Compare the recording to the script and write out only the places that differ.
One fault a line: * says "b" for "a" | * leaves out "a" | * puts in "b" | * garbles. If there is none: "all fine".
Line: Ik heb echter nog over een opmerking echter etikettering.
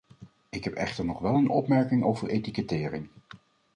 * says "wel" for "over"
* says "over" for "echter"